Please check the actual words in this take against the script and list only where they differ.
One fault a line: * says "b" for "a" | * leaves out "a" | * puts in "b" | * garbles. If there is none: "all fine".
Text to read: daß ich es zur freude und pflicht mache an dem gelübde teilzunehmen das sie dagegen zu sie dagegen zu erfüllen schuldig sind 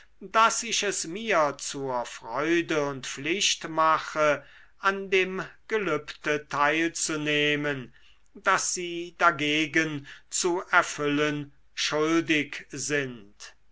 * puts in "mir"
* leaves out "sie dagegen zu"